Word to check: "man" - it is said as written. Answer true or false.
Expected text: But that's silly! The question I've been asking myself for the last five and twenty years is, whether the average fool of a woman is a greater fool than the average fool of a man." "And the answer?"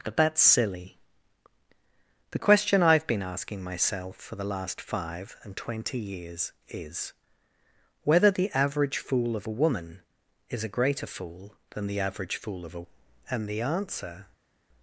false